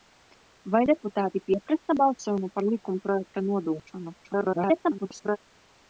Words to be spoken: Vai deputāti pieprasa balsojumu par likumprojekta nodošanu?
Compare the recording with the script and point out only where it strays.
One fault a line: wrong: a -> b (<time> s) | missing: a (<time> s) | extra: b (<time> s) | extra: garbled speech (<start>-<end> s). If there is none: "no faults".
extra: garbled speech (4.2-5.4 s)